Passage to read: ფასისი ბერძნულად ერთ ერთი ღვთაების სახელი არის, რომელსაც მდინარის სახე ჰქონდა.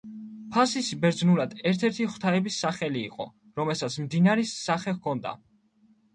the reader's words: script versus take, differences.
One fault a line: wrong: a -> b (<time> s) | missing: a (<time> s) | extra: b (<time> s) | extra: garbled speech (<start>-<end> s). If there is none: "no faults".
wrong: არის -> იყო (3.1 s)